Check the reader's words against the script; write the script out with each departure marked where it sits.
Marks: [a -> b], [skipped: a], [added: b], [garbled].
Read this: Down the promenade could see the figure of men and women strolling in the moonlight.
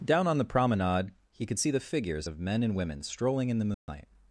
Down [added: on] the promenade [added: he] could see the [figure -> figures] of men and women strolling in the moonlight.